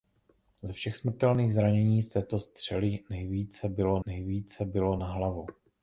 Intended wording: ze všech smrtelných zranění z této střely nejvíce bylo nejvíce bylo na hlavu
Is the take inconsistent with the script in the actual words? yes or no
no